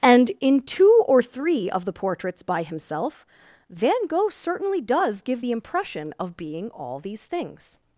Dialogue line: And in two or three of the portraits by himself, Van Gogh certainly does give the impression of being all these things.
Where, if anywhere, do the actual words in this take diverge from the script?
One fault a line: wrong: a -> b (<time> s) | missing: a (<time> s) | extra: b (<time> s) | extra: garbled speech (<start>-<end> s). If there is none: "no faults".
no faults